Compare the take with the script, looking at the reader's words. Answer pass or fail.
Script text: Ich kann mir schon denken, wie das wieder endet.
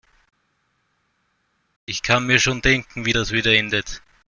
pass